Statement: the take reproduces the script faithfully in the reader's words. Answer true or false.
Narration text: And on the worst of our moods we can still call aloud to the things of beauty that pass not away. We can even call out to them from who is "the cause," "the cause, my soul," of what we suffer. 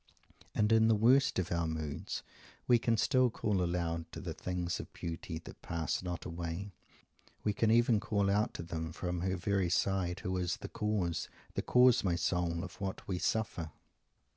false